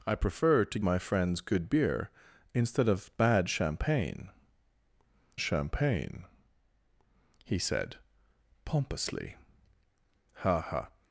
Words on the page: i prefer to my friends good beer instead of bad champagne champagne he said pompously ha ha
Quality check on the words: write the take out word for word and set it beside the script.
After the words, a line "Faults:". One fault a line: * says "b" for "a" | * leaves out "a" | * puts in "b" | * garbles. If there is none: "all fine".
i prefer to my friends good beer instead of bad champagne champagne he said pompously ha ha
Faults:
all fine